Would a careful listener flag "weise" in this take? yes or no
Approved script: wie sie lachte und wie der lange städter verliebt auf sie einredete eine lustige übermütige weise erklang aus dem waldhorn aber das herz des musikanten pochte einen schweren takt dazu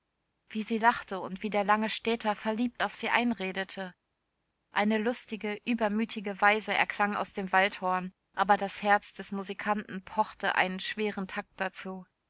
no